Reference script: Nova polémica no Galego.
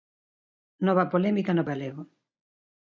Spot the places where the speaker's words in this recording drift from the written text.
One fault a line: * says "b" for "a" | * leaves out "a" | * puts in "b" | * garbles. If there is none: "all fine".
all fine